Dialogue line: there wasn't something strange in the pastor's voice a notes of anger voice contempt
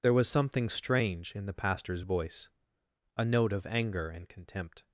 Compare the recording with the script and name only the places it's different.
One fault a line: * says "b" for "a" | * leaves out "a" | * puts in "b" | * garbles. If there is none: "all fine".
* says "was" for "wasn't"
* says "note" for "notes"
* says "and" for "voice"